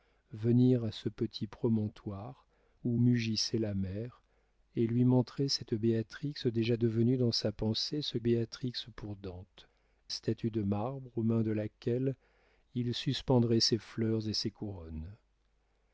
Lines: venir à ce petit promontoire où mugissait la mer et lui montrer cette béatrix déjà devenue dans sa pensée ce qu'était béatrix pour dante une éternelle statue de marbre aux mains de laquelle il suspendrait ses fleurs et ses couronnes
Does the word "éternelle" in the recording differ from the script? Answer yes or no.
yes